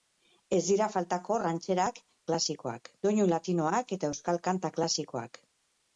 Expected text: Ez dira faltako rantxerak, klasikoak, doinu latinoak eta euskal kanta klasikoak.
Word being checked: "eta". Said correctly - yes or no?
yes